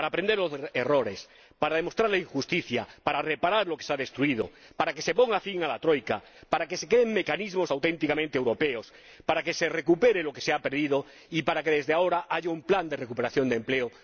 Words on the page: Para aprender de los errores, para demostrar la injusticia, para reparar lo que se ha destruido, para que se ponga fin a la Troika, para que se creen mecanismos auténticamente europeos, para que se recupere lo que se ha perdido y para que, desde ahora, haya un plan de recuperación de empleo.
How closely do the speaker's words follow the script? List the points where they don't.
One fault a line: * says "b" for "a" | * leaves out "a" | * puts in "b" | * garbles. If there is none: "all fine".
all fine